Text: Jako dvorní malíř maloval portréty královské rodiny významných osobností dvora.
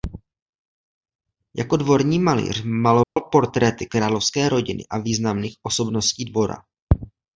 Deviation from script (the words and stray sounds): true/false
true